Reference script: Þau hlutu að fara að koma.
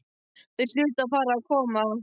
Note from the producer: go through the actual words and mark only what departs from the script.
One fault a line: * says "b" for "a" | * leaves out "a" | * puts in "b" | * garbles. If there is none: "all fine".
all fine